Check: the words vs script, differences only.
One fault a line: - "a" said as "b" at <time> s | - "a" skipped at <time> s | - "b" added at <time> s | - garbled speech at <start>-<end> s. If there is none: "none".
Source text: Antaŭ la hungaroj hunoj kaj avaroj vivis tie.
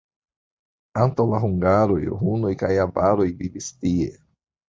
none